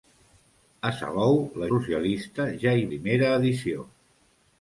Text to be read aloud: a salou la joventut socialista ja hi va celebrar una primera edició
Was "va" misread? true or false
true